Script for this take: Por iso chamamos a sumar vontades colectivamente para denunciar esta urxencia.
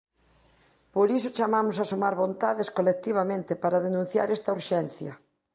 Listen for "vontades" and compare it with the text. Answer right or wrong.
right